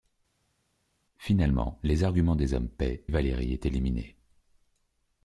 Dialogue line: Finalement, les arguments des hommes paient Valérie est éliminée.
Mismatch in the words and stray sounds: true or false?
false